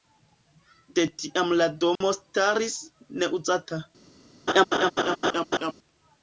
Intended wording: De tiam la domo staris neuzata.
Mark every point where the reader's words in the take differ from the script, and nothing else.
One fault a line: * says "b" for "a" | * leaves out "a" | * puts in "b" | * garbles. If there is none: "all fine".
all fine